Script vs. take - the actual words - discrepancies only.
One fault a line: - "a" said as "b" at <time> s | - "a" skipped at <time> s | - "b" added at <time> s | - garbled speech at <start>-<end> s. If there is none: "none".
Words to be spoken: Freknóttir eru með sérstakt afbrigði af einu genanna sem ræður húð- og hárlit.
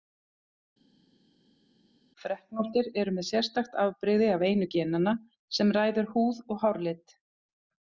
none